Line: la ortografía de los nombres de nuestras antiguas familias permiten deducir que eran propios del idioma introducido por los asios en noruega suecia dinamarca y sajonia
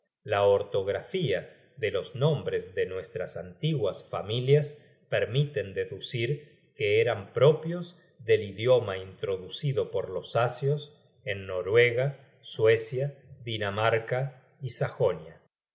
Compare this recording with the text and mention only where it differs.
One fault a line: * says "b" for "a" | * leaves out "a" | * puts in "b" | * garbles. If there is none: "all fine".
all fine